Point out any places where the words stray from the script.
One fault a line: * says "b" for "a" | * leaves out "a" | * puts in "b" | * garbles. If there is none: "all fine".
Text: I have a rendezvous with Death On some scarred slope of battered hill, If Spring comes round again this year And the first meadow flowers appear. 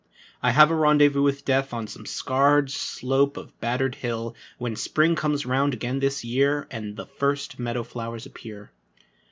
* says "When" for "If"